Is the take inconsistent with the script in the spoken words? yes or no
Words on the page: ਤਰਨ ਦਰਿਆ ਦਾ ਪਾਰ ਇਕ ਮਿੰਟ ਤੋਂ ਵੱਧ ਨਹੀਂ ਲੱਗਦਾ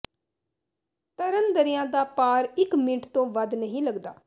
no